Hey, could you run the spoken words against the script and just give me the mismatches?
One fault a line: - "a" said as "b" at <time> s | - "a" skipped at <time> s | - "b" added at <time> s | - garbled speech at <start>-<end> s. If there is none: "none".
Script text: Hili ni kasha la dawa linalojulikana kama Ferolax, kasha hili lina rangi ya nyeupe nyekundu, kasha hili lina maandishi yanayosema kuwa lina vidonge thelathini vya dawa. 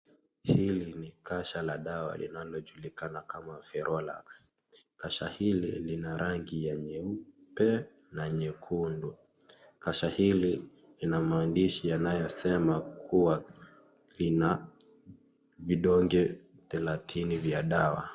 - "na" added at 8.1 s